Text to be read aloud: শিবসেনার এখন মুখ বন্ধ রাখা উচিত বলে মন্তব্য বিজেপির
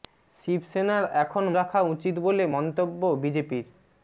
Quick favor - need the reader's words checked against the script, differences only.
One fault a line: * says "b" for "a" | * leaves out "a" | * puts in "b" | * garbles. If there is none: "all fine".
* leaves out "মুখ বন্ধ"